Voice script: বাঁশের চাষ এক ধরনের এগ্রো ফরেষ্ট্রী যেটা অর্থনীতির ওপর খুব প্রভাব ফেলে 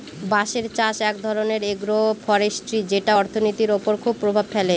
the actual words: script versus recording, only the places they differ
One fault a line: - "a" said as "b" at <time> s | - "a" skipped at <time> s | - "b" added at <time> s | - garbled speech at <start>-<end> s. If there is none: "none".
none